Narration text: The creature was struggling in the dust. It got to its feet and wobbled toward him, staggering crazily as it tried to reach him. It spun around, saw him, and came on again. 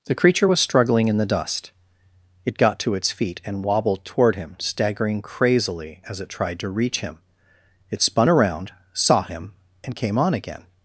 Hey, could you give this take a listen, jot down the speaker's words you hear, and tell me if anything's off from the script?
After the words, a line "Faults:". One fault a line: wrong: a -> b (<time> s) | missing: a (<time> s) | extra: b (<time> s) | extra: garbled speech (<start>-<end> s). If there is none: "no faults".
The creature was struggling in the dust. It got to its feet and wobbled toward him, staggering crazily as it tried to reach him. It spun around, saw him, and came on again.
Faults:
no faults